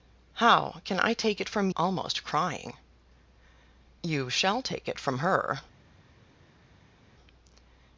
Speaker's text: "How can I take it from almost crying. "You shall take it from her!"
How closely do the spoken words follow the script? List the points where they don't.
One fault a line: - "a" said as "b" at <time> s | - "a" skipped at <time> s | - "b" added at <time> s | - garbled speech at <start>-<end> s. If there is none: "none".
none